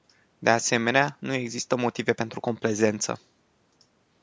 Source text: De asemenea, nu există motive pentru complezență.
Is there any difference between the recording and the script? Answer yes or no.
no